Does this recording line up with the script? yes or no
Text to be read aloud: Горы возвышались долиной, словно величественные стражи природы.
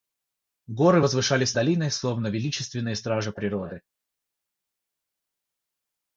yes